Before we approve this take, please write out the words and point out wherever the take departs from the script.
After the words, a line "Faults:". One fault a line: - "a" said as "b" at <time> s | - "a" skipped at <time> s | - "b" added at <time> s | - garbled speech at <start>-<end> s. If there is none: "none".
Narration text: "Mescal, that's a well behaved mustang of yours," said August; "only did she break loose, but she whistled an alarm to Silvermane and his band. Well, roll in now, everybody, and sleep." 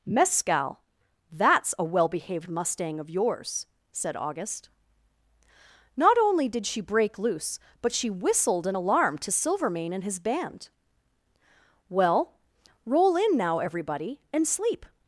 "Mescal, that's a well behaved mustang of yours," said August; "not only did she break loose, but she whistled an alarm to Silvermane and his band. Well, roll in now, everybody, and sleep."
Faults:
- "not" added at 6.0 s